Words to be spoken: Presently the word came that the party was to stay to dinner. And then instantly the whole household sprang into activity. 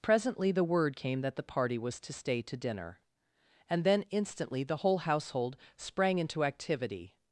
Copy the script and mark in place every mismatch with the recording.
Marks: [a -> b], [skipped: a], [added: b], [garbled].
Presently the word came that the party was to stay to dinner. And then instantly the whole household sprang into activity.